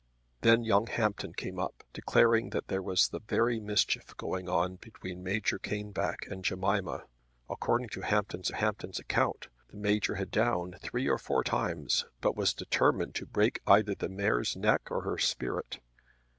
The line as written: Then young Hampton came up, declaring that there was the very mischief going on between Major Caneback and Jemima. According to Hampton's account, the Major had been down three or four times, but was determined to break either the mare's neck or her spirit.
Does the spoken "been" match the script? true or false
false